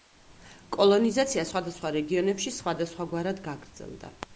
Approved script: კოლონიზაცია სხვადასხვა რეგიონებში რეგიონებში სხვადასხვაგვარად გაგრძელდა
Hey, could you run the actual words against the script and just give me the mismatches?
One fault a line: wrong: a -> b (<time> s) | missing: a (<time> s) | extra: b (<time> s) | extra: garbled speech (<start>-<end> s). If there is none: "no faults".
missing: რეგიონებში (2.6 s)